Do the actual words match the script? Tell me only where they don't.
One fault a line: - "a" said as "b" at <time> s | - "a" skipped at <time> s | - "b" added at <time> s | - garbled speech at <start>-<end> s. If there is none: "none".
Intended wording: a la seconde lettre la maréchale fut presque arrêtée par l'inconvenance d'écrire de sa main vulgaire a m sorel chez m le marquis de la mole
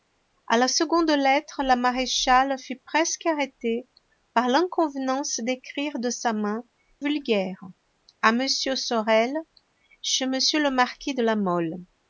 none